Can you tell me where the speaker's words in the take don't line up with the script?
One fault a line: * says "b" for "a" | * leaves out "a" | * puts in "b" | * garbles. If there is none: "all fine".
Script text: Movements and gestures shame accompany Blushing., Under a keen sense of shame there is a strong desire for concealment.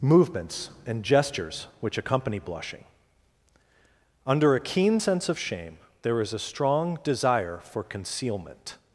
* says "which" for "shame"